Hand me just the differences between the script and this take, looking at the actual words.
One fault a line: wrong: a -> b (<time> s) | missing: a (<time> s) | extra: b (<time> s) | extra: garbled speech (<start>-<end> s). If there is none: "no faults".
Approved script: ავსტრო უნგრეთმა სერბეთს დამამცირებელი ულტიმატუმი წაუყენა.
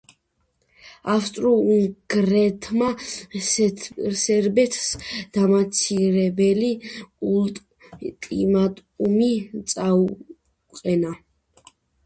no faults